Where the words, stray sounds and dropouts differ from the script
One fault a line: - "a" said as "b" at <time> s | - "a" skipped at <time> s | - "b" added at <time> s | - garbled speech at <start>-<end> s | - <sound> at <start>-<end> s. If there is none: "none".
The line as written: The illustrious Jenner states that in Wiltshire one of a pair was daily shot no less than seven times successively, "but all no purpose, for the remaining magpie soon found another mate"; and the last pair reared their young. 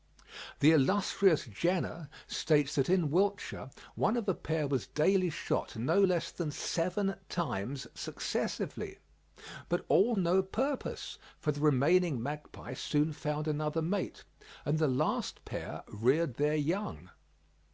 none